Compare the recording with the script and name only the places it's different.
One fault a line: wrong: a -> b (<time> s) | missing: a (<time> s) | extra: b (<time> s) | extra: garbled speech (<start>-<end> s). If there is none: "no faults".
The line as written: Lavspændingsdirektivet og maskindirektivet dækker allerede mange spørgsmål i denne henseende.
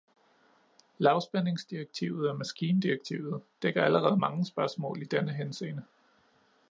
no faults